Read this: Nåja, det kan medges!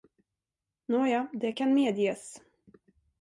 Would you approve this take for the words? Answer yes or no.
yes